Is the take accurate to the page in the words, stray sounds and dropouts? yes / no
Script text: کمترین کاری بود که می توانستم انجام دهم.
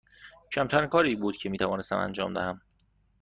yes